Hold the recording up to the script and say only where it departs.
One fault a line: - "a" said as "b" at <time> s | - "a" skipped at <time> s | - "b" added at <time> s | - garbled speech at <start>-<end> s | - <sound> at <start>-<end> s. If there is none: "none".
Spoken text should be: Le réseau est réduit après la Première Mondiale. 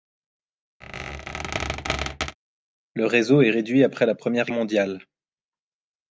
- squeak at 0.8-2.4 s